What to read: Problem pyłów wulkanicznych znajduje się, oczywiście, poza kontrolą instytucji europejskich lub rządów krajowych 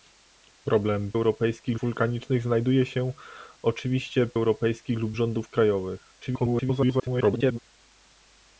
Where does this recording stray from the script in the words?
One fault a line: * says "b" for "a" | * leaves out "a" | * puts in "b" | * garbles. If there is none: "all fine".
* says "europejskich" for "pyłów"
* leaves out "poza kontrolą instytucji"
* garbles